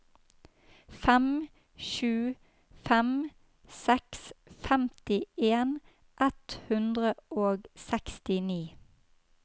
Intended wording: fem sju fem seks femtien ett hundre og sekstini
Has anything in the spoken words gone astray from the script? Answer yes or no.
no